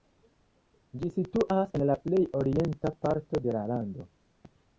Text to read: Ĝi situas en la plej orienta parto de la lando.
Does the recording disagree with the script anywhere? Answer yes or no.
no